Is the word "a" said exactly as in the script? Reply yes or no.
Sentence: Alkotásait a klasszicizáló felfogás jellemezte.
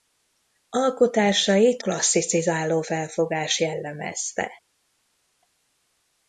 no